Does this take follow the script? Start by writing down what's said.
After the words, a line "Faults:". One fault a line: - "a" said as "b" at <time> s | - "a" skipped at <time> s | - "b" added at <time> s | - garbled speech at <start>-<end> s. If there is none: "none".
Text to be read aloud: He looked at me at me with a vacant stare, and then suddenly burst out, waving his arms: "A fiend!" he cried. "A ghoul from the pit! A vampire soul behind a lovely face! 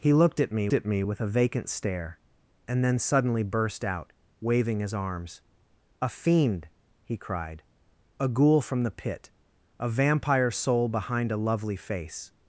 He looked at me at me with a vacant stare, and then suddenly burst out, waving his arms: "A fiend!" he cried. "A ghoul from the pit! A vampire soul behind a lovely face!
Faults:
none